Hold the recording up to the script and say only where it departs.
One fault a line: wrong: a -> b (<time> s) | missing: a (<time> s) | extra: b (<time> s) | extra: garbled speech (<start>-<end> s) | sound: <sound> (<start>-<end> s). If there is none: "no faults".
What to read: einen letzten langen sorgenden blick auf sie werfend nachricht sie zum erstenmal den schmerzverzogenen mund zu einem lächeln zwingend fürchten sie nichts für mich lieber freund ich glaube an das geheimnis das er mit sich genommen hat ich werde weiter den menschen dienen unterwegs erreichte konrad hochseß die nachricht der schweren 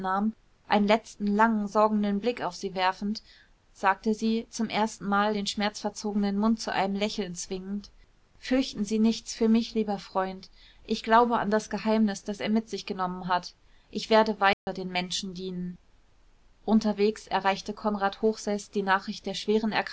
wrong: nachricht -> sagte (3.7 s)
sound: dropout (14.5-14.7 s)